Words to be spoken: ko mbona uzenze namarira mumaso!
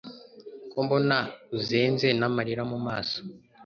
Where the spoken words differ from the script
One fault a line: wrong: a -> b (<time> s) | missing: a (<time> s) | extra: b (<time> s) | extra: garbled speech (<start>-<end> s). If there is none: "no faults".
no faults